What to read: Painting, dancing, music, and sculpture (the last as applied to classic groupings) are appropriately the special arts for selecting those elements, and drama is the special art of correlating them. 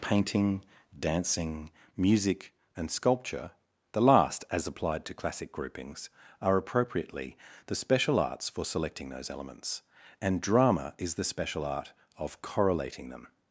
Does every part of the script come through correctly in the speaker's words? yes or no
yes